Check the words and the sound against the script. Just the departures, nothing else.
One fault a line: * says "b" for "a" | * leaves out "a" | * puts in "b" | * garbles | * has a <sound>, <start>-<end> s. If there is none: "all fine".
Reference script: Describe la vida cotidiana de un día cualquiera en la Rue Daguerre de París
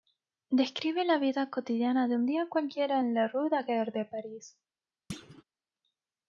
* has a thud, 5.1-5.4 s